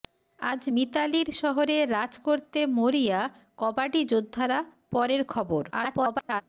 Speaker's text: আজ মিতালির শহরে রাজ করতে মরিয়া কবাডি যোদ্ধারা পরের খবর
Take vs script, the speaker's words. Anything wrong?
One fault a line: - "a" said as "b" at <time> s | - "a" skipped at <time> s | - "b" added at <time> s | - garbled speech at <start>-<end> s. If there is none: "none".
- garbled speech at 5.7-6.4 s